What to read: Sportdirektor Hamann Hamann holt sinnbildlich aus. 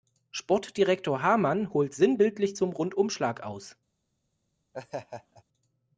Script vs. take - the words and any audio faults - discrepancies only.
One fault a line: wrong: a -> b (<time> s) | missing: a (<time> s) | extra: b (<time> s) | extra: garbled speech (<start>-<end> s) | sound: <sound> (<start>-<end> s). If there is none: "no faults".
missing: Hamann (1.7 s)
extra: zum Rundumschlag (2.6 s)
sound: laugh (4.7-5.4 s)